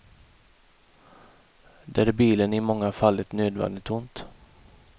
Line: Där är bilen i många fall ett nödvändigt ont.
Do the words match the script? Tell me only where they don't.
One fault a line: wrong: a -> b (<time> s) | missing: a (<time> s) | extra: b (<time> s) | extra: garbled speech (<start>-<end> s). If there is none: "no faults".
no faults